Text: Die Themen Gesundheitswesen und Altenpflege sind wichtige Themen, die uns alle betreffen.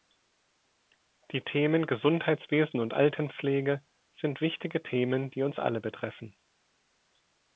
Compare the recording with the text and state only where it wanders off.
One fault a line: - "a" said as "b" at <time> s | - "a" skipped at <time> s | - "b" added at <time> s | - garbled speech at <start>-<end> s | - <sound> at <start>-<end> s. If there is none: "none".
none